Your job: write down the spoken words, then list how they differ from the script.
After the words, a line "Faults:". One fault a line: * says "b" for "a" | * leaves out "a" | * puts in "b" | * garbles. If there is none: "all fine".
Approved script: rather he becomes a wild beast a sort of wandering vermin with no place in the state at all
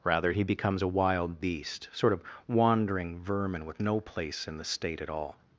rather he becomes a wild beast sort of wandering vermin with no place in the state at all
Faults:
* leaves out "a"